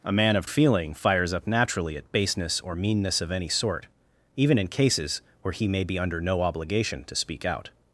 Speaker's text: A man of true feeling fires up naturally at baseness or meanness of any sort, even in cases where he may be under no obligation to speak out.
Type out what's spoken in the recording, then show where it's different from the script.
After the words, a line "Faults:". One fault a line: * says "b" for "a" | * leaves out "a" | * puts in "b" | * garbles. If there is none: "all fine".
A man of feeling fires up naturally at baseness or meanness of any sort, even in cases where he may be under no obligation to speak out.
Faults:
* leaves out "true"